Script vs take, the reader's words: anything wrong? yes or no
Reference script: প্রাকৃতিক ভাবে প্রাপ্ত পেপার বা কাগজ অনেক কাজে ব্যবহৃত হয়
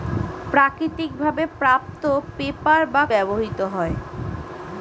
yes